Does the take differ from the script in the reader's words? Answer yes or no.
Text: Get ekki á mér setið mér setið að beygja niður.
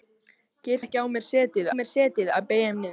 no